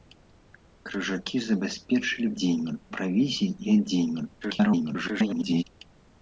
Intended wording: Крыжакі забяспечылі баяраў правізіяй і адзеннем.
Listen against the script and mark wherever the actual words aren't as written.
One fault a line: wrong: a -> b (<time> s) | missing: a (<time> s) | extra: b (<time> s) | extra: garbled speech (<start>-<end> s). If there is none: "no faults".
wrong: баяраў -> адзеннем (2.3 s)
extra: garbled speech (4.4-5.6 s)